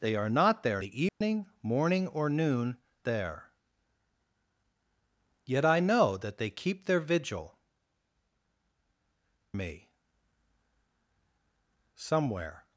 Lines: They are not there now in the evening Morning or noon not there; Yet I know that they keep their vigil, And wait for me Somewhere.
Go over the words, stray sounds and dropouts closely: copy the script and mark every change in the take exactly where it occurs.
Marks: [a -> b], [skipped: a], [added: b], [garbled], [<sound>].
They are not there [skipped: now in] the evening [dropout] Morning or noon [skipped: not] there; Yet I know that they keep their vigil, [skipped: And wait for] me Somewhere.